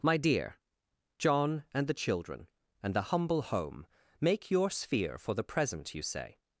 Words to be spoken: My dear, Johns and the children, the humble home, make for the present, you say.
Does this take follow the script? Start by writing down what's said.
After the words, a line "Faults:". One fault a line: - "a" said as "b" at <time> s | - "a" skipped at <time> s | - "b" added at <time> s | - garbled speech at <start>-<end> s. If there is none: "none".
My dear, John and the children, and the humble home, make your sphere for the present, you say.
Faults:
- "Johns" said as "John" at 1.2 s
- "and" added at 2.8 s
- "your sphere" added at 4.5 s